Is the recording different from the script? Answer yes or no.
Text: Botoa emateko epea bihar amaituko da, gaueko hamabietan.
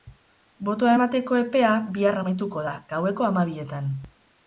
no